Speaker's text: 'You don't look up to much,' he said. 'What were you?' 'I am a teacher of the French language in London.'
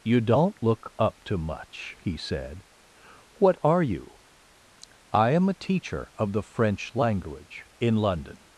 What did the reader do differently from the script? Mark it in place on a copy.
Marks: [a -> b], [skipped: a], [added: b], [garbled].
'You don't look up to much,' he said. 'What [were -> are] you?' 'I am a teacher of the French language in London.'